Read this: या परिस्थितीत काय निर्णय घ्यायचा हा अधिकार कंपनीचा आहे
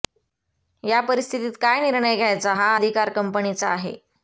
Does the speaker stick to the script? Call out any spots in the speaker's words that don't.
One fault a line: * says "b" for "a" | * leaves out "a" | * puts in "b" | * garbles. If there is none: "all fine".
all fine